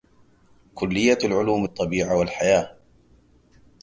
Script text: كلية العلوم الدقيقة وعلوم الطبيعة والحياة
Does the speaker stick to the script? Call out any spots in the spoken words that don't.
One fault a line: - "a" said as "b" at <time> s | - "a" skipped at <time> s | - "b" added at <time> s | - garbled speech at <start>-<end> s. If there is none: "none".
- "الدقيقة وعلوم" skipped at 1.7 s